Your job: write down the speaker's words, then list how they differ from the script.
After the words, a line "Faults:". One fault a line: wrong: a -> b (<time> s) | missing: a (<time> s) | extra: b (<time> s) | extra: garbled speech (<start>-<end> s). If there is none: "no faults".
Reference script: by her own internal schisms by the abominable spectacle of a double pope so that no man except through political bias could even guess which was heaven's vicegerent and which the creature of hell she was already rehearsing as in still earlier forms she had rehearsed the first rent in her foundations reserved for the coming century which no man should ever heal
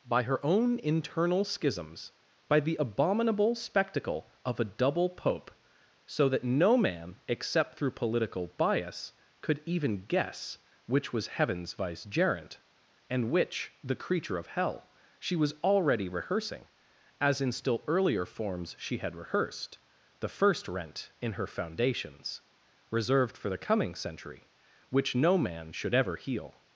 by her own internal schisms by the abominable spectacle of a double pope so that no man except through political bias could even guess which was heaven's vicegerent and which the creature of hell she was already rehearsing as in still earlier forms she had rehearsed the first rent in her foundations reserved for the coming century which no man should ever heal
Faults:
no faults